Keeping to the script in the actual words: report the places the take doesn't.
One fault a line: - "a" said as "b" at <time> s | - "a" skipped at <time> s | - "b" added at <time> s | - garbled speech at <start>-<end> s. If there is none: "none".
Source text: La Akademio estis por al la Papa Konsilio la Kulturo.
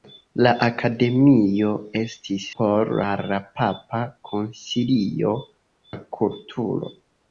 none